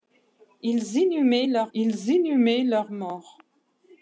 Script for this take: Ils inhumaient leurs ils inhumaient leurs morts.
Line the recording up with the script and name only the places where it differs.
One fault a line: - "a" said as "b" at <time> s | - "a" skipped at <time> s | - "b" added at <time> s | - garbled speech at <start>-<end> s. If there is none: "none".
none